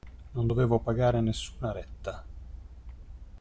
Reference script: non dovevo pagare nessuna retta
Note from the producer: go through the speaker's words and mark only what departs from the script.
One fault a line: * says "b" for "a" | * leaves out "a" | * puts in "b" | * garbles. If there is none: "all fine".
all fine